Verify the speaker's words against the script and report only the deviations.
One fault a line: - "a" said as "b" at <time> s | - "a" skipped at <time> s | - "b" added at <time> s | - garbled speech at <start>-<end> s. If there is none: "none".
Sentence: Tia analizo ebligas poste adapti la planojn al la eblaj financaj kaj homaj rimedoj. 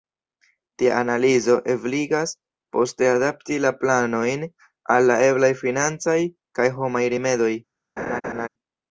none